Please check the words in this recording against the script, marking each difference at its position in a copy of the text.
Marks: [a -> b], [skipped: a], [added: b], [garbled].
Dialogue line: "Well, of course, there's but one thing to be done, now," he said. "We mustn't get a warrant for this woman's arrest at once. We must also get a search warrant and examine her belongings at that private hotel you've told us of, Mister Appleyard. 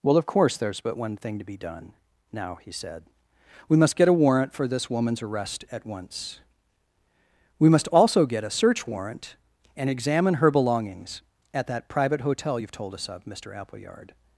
"Well, of course, there's but one thing to be done, now," he said. "We [mustn't -> must] get a warrant for this woman's arrest at once. We must also get a search warrant and examine her belongings at that private hotel you've told us of, Mister Appleyard.